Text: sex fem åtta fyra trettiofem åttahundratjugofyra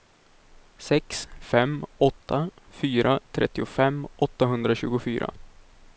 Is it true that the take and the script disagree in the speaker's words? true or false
false